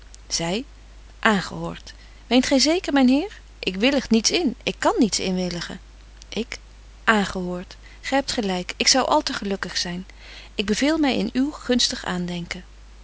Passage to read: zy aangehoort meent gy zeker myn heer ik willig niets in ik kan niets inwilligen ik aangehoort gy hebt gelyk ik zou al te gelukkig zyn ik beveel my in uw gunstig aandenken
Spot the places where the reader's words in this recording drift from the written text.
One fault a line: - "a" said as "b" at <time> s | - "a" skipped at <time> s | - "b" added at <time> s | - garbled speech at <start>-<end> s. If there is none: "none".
none